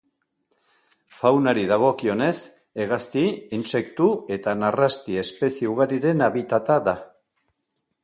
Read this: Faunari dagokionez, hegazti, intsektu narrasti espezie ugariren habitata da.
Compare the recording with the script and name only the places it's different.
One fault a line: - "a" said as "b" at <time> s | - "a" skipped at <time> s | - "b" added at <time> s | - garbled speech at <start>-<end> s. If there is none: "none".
- "eta" added at 4.4 s